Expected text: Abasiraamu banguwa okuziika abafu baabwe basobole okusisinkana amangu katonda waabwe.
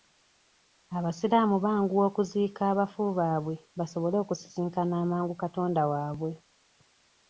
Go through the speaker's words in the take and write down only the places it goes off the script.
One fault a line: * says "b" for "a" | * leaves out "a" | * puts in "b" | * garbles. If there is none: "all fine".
all fine